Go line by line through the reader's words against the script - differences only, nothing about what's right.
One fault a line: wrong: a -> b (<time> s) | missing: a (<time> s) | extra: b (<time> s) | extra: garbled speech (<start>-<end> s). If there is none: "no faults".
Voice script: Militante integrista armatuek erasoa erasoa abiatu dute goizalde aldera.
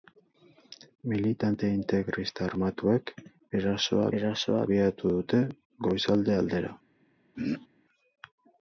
no faults